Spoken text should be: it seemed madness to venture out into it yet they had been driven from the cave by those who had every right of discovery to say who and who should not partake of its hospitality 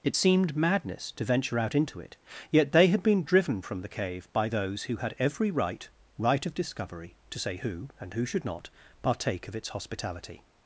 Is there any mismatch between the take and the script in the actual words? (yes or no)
yes